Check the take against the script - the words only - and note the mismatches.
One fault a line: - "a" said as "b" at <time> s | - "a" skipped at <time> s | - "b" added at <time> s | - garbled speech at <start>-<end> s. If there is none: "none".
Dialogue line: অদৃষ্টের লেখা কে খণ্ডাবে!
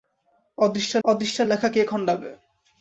- "অদৃষ্টের" added at 1.0 s